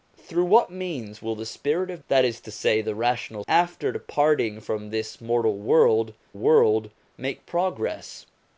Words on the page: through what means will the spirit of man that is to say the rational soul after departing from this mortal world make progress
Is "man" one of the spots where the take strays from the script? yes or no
yes